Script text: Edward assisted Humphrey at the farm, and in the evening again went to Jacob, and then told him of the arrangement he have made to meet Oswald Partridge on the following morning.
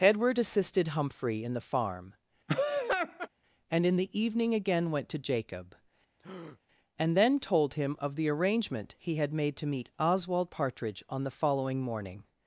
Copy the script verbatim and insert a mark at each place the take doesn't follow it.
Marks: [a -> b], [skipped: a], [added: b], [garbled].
Edward assisted Humphrey [at -> in] the farm, and in the evening again went to Jacob, and then told him of the arrangement he [have -> had] made to meet Oswald Partridge on the following morning.